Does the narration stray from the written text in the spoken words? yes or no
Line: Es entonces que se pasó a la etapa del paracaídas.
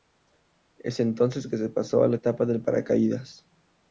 no